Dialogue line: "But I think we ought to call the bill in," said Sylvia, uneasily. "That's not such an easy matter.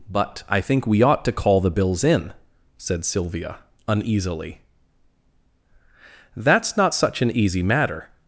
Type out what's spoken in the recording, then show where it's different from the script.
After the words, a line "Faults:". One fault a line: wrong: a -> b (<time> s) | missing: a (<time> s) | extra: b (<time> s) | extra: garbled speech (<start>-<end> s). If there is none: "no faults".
"But I think we ought to call the bills in," said Sylvia, uneasily. "That's not such an easy matter.
Faults:
wrong: bill -> bills (1.7 s)